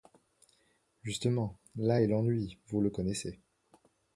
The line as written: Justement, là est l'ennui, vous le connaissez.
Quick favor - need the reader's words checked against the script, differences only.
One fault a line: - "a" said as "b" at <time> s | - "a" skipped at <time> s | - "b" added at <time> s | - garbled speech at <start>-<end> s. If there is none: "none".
none